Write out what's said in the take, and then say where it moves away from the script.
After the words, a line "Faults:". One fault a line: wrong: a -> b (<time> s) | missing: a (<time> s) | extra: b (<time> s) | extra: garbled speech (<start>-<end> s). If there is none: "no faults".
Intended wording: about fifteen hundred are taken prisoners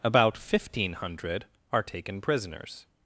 about fifteen hundred are taken prisoners
Faults:
no faults